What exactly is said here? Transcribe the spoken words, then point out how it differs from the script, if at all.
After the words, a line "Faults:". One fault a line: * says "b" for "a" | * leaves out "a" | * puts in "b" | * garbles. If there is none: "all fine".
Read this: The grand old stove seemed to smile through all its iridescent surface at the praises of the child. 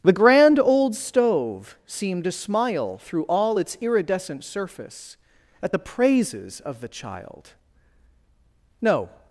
The grand old stove seemed to smile through all its iridescent surface at the praises of the child. No
Faults:
* puts in "No"